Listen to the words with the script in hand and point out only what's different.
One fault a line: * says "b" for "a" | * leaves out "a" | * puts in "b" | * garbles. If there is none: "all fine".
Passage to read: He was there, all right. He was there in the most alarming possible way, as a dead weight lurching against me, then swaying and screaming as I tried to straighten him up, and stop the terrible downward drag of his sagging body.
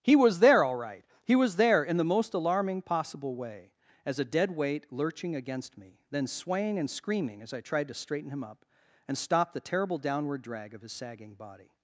all fine